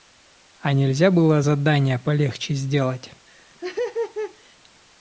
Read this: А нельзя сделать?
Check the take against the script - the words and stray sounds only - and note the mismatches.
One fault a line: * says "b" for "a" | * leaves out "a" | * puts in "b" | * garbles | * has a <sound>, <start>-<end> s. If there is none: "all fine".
* puts in "было задания полегче"
* has a laugh, 3.3-4.6 s